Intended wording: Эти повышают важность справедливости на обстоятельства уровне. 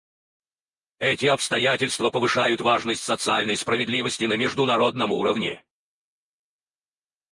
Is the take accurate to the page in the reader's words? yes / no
no